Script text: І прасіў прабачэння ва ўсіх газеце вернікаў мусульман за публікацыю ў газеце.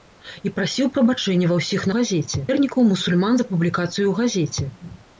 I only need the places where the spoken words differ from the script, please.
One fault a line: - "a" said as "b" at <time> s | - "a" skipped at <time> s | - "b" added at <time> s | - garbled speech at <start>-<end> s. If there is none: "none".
none